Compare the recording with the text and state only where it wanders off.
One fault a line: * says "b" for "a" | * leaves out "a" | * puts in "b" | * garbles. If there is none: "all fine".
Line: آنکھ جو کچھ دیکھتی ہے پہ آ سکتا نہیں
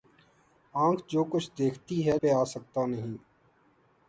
all fine